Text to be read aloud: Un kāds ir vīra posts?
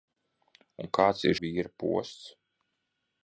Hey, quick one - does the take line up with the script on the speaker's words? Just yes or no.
yes